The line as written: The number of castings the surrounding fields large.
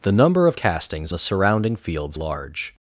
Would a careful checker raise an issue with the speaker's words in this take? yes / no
no